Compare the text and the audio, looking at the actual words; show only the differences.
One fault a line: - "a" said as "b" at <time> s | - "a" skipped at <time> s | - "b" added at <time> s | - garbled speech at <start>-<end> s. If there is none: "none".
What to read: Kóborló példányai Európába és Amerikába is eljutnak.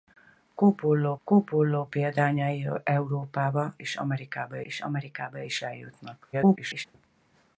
- "kóborló" added at 1.2 s
- "és Amerikába" added at 4.6 s
- garbled speech at 6.3-6.9 s